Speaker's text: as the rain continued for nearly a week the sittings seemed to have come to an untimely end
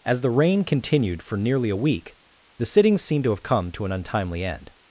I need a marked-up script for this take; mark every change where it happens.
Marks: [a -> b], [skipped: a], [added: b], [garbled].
as the rain continued for nearly a week the sittings seemed to have come to an untimely end